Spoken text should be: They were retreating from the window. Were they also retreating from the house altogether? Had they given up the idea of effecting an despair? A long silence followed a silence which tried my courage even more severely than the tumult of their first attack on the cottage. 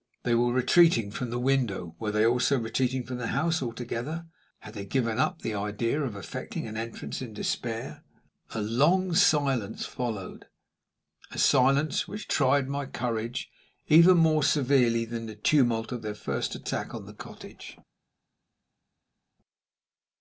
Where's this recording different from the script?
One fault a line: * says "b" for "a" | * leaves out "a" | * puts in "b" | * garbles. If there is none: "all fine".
* puts in "entrance in"